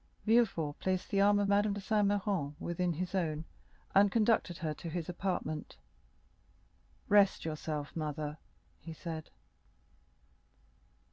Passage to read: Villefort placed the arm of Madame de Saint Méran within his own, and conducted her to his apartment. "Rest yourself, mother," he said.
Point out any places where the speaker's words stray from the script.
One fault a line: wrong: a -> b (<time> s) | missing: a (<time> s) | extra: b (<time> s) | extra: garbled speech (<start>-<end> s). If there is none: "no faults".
no faults